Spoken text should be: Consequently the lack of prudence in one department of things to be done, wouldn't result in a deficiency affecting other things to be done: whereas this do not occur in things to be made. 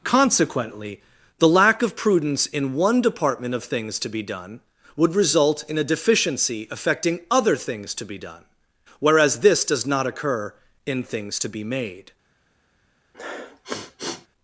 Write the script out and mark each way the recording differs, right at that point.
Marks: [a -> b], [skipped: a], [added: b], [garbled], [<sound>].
Consequently the lack of prudence in one department of things to be done, [wouldn't -> would] result in a deficiency affecting other things to be done: whereas this [do -> does] not occur in things to be made. [sniff]